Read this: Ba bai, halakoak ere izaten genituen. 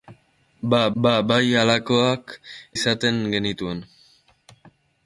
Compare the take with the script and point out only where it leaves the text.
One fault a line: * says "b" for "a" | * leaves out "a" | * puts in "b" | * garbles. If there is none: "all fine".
* puts in "ba"
* leaves out "ere"